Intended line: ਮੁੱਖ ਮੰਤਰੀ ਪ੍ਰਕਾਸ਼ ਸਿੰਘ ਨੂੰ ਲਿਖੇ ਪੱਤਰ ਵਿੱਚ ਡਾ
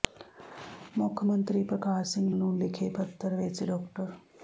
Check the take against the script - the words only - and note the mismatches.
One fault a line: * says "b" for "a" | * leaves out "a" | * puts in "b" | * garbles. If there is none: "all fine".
all fine